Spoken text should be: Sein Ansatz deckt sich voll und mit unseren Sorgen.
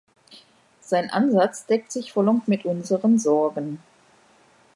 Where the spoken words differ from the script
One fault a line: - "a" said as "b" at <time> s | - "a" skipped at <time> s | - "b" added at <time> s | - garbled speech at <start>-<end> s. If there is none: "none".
none